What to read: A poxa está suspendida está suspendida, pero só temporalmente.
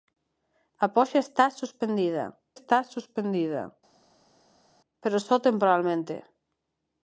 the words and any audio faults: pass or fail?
pass